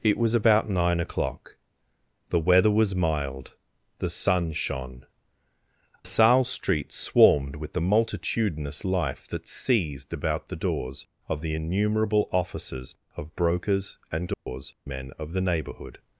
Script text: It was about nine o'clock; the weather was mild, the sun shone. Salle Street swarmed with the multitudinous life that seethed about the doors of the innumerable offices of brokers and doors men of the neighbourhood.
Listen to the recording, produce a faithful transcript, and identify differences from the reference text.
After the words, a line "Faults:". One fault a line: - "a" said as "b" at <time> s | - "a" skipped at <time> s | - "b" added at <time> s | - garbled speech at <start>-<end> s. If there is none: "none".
It was about nine o'clock; the weather was mild, the sun shone. Salle Street swarmed with the multitudinous life that seethed about the doors of the innumerable offices of brokers and doors men of the neighbourhood.
Faults:
none